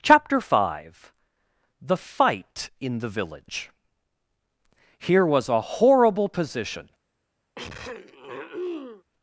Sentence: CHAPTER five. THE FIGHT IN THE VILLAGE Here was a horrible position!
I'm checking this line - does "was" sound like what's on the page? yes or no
yes